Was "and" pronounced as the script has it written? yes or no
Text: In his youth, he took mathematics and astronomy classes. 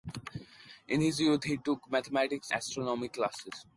no